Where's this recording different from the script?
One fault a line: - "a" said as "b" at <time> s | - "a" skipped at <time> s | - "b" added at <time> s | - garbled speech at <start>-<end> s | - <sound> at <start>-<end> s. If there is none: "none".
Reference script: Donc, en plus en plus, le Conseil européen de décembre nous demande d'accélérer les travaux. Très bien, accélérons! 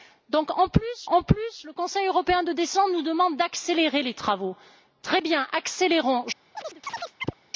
- chirp at 6.5-7.4 s